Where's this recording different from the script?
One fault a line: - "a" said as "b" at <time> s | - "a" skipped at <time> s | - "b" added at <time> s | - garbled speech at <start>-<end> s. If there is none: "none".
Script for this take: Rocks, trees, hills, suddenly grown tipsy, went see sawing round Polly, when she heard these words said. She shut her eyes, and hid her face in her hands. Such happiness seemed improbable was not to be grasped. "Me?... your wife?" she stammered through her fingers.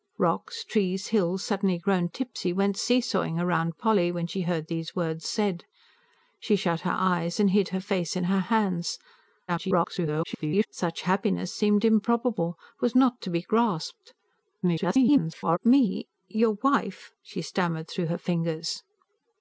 - garbled speech at 9.5-10.7 s
- garbled speech at 14.6-15.6 s